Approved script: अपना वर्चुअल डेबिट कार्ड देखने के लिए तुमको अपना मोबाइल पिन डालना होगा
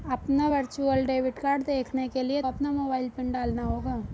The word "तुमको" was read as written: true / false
false